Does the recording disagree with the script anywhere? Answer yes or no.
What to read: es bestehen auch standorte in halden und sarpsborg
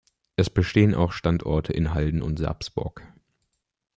no